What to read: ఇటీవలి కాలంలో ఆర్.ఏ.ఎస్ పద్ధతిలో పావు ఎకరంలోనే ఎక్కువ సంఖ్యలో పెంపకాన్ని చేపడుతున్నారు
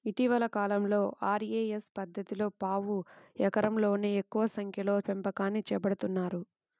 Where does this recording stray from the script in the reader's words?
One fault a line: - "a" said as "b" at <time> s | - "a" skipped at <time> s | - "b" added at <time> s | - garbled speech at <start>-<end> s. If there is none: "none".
none